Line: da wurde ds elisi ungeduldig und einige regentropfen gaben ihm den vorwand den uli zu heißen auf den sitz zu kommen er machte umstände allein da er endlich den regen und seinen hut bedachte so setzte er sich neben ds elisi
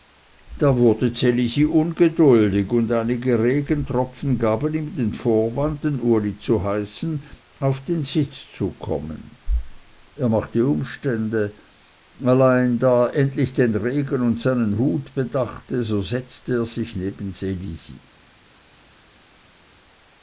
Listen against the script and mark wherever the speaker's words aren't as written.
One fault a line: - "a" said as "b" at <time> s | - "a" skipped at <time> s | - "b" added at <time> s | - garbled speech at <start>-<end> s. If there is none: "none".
none